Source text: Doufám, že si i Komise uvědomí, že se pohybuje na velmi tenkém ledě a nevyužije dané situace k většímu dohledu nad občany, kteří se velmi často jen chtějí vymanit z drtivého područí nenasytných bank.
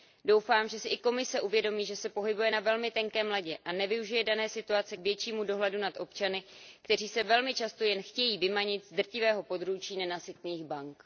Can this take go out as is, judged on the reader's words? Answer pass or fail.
pass